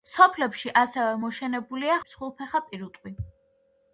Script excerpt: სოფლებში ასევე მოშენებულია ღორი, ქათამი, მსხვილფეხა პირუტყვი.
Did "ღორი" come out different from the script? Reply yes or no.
yes